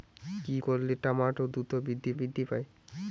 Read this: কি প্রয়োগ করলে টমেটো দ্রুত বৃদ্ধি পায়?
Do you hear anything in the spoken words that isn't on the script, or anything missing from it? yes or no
yes